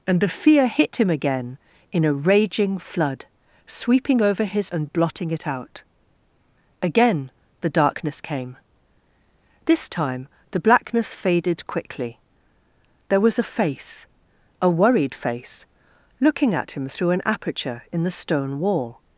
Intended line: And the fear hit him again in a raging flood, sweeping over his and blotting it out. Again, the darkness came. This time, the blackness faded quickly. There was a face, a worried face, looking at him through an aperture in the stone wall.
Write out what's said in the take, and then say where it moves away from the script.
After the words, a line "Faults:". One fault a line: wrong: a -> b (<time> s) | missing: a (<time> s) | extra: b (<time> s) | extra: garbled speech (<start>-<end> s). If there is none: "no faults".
And the fear hit him again in a raging flood, sweeping over his and blotting it out. Again, the darkness came. This time, the blackness faded quickly. There was a face, a worried face, looking at him through an aperture in the stone wall.
Faults:
no faults